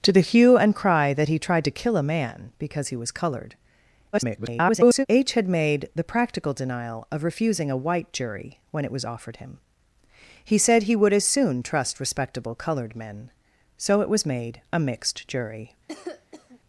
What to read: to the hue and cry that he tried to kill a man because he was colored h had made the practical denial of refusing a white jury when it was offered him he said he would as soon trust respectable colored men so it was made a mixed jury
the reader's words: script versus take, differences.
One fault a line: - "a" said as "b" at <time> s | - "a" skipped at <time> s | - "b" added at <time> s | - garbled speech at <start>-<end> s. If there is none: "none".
- garbled speech at 4.1-5.1 s